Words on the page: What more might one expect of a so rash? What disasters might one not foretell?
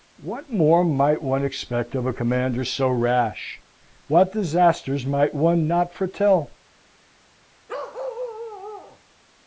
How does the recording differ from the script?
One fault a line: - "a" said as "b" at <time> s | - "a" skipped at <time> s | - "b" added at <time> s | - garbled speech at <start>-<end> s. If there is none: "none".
- "commander" added at 2.1 s